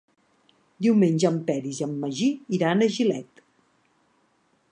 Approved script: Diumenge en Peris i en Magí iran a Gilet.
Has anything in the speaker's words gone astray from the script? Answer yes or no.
no